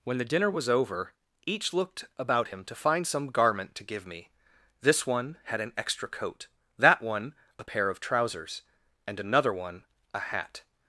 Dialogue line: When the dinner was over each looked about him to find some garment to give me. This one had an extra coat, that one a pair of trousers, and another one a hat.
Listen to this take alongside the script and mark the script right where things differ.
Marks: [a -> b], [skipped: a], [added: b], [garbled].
When the dinner was over each looked about him to find some garment to give me. This one had an extra coat, that one a pair of trousers, and another one a hat.